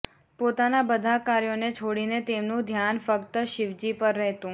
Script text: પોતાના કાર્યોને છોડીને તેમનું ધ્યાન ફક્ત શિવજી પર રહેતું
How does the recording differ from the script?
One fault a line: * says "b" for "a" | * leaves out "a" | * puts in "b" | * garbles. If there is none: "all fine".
* puts in "બધા"